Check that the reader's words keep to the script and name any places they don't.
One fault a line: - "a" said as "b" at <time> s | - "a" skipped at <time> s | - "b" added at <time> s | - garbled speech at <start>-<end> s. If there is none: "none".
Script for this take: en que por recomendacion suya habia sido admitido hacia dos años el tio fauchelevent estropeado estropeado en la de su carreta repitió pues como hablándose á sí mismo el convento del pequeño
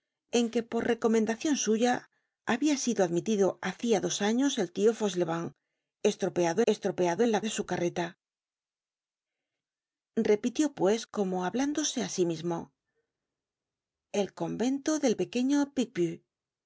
none